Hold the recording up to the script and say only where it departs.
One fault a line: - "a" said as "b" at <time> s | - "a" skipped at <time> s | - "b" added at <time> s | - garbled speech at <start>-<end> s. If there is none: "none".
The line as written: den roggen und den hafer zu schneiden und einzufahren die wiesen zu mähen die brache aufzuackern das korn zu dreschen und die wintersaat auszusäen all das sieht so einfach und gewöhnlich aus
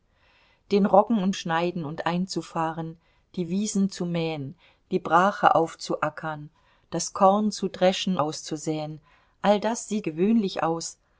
- "den hafer zu" skipped at 1.3 s
- "und die wintersaat" skipped at 8.2 s
- "so einfach und" skipped at 10.1 s